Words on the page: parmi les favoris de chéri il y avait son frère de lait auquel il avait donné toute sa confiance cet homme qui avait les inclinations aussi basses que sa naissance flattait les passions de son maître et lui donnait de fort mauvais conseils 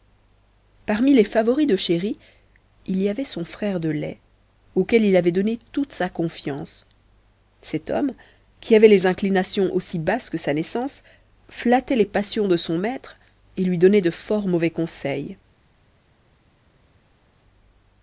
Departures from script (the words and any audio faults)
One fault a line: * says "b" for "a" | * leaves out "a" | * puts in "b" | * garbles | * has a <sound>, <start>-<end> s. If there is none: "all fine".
all fine